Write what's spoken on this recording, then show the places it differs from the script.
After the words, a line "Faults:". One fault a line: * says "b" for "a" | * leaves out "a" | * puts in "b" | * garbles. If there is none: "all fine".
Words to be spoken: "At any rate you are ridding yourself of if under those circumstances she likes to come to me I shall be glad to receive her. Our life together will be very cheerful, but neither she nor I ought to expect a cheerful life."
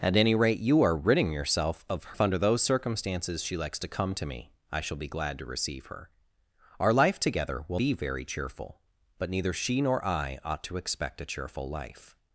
"At any rate you are ridding yourself of if under those circumstances she likes to come to me I shall be glad to receive her. Our life together will be very cheerful, but neither she nor I ought to expect a cheerful life."
Faults:
all fine